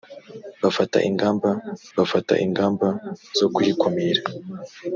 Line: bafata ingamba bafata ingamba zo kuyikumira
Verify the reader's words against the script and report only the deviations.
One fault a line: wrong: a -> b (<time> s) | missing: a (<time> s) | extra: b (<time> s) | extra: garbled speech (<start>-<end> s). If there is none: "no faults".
no faults